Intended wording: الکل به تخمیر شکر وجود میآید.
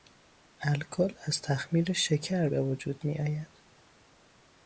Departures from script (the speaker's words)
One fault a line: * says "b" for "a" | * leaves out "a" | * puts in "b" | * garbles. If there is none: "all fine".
* says "از" for "به"
* puts in "به"